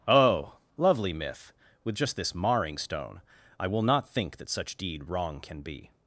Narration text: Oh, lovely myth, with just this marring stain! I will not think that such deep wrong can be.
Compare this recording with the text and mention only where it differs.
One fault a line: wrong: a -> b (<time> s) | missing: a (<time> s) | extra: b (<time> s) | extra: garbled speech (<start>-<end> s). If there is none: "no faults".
wrong: stain -> stone (2.8 s)
wrong: deep -> deed (4.8 s)